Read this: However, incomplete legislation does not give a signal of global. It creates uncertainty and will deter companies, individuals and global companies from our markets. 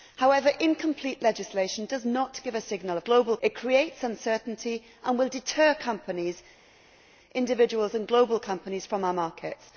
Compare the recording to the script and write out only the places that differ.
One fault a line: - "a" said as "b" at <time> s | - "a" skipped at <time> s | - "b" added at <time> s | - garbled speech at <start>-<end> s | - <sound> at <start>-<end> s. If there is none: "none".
none